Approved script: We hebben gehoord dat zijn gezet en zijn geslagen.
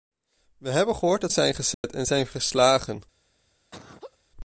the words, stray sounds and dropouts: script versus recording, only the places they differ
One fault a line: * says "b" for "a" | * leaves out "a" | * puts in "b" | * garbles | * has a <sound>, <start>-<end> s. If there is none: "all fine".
* has a dropout, 1.7-1.8 s
* has a laugh, 3.7-4.2 s